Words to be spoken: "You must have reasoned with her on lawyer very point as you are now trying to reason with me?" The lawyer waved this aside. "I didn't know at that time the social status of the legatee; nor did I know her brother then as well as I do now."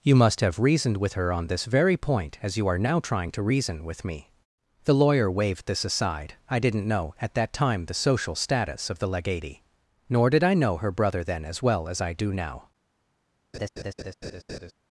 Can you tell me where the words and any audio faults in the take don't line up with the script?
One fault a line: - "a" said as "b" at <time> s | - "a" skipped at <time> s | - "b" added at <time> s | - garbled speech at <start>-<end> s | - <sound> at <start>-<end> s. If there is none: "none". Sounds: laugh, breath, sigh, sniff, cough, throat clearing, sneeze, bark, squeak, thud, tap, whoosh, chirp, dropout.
- "lawyer" said as "this" at 1.4 s
- laugh at 13.5-14.7 s